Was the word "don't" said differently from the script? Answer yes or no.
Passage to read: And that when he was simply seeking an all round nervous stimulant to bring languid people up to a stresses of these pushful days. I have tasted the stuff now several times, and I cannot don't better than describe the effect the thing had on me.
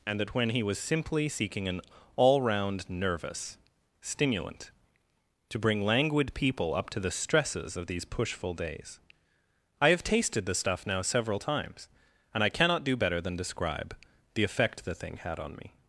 yes